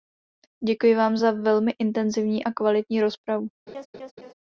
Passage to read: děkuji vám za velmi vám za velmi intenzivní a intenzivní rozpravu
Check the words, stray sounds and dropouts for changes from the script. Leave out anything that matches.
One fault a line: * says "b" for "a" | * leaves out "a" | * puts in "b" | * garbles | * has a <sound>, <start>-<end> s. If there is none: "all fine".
* leaves out "vám za velmi"
* says "kvalitní" for "intenzivní"
* has a laugh, 3.7-4.3 s